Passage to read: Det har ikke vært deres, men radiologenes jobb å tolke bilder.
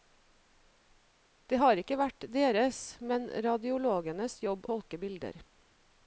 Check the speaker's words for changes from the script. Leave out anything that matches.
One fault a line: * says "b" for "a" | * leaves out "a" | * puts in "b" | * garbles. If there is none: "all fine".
* leaves out "å"